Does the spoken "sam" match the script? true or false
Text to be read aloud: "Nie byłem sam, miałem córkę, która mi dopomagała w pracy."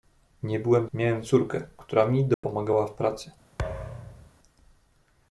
false